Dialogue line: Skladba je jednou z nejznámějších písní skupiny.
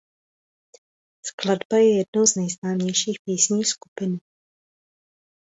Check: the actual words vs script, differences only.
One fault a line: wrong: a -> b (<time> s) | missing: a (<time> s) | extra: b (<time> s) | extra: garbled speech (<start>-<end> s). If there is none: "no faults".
no faults